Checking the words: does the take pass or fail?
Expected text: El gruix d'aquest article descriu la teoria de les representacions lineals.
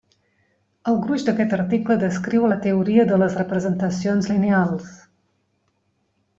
pass